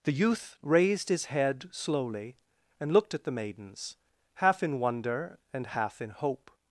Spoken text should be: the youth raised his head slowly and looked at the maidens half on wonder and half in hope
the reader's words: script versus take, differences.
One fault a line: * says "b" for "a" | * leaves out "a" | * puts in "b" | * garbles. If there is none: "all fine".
* says "in" for "on"